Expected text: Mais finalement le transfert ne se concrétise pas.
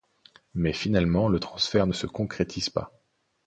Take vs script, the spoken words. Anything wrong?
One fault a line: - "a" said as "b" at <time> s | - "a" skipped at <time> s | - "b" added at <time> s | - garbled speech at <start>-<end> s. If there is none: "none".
none